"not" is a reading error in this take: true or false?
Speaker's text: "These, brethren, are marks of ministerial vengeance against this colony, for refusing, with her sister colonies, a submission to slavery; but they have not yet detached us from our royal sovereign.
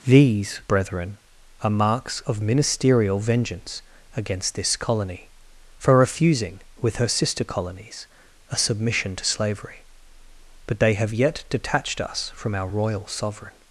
true